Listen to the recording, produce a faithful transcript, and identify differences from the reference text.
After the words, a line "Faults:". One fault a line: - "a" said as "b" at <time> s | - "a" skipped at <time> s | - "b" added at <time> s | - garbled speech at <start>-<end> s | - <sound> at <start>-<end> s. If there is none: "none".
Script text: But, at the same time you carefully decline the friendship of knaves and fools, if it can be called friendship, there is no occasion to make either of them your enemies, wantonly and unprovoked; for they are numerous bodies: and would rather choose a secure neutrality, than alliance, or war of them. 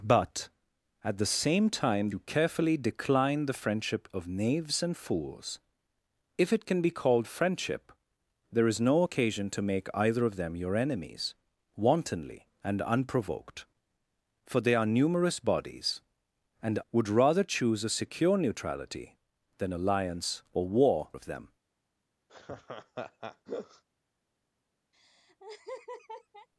But, at the same time you carefully decline the friendship of knaves and fools, if it can be called friendship, there is no occasion to make either of them your enemies, wantonly and unprovoked; for they are numerous bodies: and would rather choose a secure neutrality, than alliance, or war of them.
Faults:
- laugh at 22.3-23.8 s
- laugh at 24.9-26.5 s